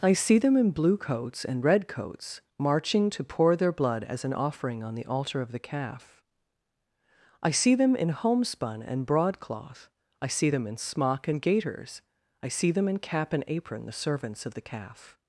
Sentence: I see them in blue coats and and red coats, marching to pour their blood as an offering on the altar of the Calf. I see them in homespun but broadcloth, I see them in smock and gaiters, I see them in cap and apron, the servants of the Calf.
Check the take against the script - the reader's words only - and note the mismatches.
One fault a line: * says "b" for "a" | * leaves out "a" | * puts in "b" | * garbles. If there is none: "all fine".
* leaves out "and"
* says "and" for "but"